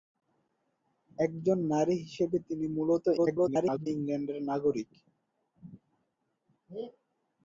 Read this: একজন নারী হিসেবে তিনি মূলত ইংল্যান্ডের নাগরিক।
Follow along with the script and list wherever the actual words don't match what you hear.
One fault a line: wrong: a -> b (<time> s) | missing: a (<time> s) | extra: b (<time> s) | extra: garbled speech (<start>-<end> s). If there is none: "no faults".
extra: garbled speech (3.2-3.9 s)